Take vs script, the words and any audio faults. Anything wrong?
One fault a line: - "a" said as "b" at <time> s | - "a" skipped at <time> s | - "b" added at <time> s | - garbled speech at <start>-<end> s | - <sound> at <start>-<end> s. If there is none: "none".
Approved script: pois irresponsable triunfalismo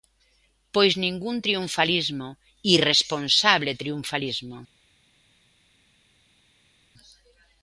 - "ningún triunfalismo" added at 1.0 s